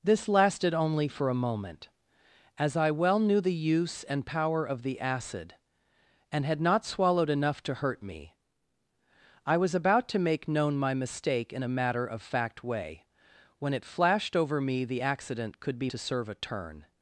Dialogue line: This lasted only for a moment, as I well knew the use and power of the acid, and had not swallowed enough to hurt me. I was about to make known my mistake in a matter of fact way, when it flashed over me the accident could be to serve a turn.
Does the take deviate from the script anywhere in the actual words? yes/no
no